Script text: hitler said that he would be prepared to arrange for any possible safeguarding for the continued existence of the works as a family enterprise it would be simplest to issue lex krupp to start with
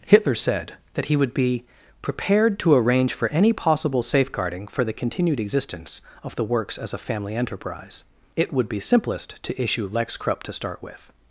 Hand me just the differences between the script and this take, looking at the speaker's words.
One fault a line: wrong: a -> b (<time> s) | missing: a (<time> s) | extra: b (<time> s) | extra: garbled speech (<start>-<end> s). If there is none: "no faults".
no faults